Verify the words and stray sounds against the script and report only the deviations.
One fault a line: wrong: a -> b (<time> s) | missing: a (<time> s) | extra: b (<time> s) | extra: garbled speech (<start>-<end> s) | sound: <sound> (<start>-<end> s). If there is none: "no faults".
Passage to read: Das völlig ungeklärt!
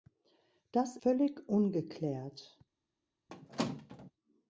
sound: squeak (3.3-4.1 s)